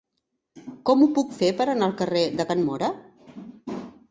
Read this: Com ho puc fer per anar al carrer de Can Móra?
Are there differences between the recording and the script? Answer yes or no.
no